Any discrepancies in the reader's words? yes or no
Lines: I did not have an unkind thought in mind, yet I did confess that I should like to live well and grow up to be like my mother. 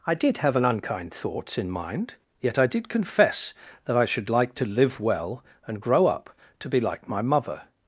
yes